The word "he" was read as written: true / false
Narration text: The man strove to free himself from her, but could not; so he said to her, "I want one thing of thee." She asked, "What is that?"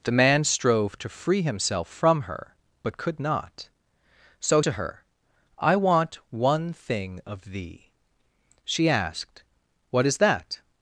false